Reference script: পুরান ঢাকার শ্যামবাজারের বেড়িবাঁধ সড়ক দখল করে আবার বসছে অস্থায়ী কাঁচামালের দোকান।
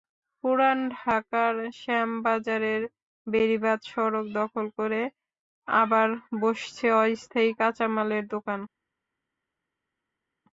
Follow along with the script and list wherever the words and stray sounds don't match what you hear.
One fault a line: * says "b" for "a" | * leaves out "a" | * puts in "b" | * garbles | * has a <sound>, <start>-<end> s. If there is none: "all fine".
all fine